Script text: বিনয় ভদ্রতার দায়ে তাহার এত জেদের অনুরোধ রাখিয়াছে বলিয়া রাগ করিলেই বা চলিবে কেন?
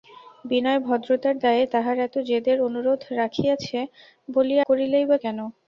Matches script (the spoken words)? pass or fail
fail